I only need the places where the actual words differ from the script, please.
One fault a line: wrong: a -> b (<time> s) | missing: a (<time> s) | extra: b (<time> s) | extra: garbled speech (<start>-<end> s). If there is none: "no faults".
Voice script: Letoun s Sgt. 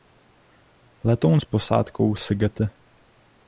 extra: posádkou (1.4 s)